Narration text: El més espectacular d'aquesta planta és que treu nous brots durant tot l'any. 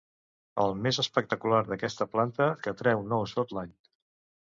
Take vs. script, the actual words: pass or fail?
fail